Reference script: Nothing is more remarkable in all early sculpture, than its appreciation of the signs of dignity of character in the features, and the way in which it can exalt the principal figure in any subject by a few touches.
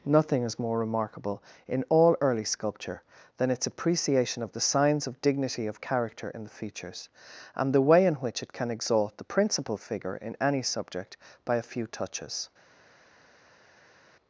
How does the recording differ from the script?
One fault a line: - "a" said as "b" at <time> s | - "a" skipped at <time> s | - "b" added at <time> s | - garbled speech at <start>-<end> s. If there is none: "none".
none